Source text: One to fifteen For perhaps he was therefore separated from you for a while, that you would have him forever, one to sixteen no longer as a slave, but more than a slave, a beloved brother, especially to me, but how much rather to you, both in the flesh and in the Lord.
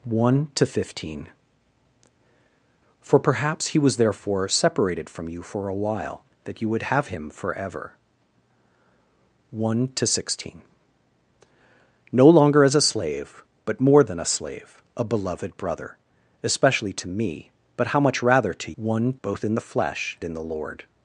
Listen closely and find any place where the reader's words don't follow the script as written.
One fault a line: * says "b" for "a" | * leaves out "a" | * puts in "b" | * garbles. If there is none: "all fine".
* says "one" for "you"
* leaves out "and"